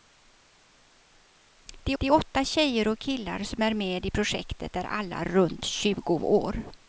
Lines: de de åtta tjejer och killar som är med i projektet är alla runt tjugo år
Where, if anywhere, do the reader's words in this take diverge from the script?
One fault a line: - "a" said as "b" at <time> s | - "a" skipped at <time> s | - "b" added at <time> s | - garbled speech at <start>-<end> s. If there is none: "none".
none